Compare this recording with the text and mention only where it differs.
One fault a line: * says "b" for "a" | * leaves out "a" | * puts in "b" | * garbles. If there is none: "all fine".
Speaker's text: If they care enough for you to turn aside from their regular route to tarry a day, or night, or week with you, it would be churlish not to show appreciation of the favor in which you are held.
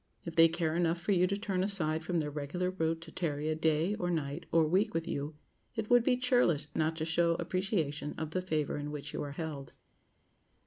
all fine